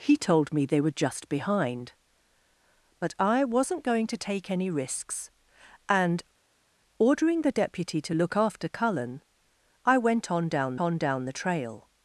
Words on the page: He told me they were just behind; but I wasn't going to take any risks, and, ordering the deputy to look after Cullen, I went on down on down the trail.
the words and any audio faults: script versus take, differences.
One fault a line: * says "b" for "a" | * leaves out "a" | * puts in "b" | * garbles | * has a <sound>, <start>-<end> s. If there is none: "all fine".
all fine